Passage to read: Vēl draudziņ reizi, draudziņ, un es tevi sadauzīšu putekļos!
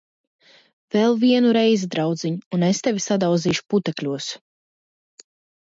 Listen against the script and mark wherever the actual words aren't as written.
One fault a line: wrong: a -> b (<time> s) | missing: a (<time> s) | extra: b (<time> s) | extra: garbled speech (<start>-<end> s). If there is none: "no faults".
wrong: draudziņ -> vienu (1.2 s)